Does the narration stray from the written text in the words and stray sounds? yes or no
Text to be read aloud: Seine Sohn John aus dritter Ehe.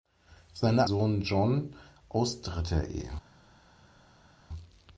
no